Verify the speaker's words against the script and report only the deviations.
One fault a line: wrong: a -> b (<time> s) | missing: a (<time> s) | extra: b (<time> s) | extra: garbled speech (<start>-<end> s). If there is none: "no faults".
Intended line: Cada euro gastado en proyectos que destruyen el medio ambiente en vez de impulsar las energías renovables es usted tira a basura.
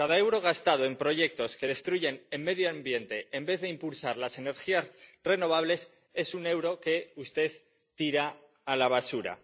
extra: un euro que (6.3 s)
extra: la (8.8 s)